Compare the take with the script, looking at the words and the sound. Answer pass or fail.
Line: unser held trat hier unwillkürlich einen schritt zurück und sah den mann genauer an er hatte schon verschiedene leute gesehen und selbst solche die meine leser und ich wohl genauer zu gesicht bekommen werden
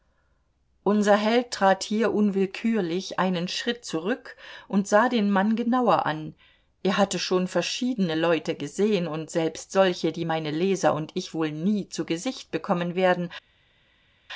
fail